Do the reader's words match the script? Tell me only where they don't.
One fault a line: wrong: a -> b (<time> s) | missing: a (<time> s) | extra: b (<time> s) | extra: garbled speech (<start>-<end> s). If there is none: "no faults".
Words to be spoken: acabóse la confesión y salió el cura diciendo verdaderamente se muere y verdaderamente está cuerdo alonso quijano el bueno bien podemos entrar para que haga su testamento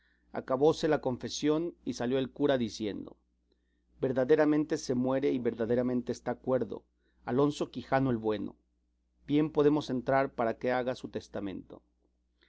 no faults